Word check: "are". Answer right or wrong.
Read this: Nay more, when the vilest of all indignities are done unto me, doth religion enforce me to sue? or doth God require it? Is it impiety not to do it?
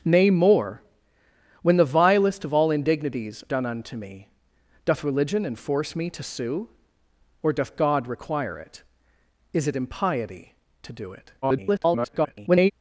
wrong